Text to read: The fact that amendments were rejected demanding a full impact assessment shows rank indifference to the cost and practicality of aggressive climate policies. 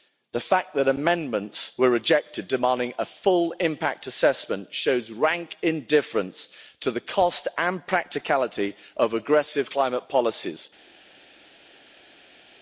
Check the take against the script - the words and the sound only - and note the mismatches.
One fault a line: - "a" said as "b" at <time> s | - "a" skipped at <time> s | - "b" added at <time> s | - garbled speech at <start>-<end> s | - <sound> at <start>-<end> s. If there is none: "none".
none